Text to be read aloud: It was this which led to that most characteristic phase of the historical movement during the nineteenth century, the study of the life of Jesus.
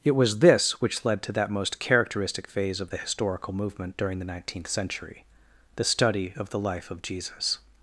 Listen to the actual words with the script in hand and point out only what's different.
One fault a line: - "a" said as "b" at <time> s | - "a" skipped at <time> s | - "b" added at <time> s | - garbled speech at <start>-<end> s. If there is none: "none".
none